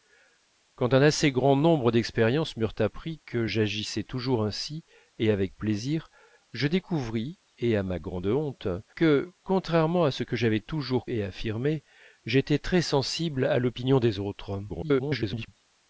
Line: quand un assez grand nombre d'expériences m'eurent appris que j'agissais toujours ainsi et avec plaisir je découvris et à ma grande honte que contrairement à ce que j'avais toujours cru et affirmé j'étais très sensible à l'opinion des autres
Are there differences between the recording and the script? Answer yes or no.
yes